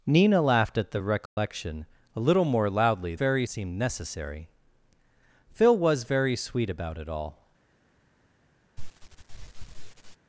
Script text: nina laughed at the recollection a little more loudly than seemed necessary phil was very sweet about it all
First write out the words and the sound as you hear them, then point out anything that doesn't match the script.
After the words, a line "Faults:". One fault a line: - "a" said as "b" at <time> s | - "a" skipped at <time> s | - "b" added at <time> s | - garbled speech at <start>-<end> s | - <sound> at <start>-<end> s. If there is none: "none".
nina laughed at the recollection a little more loudly very seemed necessary phil was very sweet about it all
Faults:
- dropout at 1.3-1.4 s
- "than" said as "very" at 3.1 s
- sniff at 8.8-10.2 s